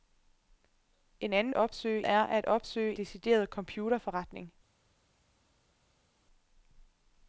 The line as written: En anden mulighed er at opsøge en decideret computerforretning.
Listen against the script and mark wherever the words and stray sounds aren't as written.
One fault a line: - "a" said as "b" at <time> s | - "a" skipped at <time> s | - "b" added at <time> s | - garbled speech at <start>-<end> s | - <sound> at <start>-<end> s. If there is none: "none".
- "mulighed" said as "opsøge" at 1.5 s
- "en" skipped at 3.0 s